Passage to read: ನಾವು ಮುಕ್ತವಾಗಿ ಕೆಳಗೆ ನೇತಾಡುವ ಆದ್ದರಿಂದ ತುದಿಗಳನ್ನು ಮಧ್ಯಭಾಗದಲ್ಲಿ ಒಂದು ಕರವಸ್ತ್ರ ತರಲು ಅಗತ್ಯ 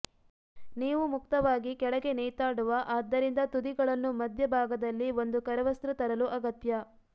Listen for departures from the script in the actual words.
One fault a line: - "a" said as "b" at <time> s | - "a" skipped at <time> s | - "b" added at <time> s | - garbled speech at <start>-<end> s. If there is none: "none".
- "ನಾವು" said as "ನೀವು" at 0.8 s